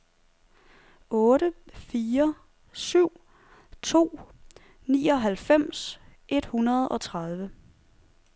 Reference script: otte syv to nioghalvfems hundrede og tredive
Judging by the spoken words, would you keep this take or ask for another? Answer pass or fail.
fail